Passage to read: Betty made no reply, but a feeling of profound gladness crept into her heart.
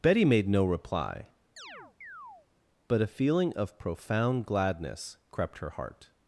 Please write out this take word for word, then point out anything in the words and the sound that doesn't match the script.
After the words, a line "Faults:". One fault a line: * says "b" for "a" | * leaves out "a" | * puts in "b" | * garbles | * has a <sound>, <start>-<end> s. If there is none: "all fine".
Betty made no reply, but a feeling of profound gladness crept her heart.
Faults:
* has a chirp, 1.6-2.5 s
* leaves out "into"